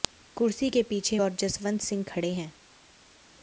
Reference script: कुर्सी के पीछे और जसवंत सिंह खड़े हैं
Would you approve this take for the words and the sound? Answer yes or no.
yes